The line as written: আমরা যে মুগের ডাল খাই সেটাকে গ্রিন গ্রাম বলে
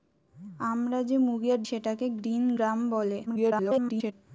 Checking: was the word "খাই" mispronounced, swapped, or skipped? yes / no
yes